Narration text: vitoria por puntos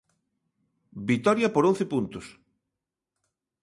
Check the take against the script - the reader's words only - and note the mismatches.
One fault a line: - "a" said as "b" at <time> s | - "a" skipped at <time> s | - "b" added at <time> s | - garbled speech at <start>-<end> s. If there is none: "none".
- "once" added at 1.7 s